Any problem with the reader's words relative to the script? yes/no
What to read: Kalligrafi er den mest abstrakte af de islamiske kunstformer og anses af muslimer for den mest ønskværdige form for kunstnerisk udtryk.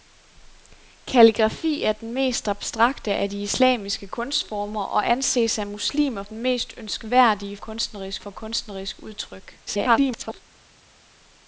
yes